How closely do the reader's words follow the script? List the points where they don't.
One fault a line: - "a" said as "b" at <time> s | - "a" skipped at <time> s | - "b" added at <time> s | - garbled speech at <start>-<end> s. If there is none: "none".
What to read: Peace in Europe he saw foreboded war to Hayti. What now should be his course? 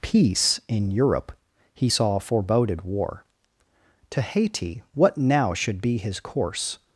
none